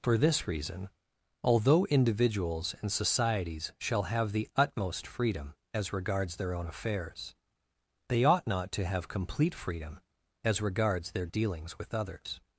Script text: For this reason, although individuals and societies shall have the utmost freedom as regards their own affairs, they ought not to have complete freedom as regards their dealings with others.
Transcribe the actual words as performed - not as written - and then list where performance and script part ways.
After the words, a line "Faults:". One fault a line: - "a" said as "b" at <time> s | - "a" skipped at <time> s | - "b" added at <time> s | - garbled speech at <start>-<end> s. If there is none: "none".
For this reason, although individuals and societies shall have the utmost freedom as regards their own affairs, they ought not to have complete freedom as regards their dealings with others.
Faults:
none